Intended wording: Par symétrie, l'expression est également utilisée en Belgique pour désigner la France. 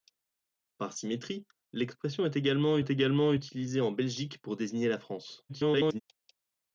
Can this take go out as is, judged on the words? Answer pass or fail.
fail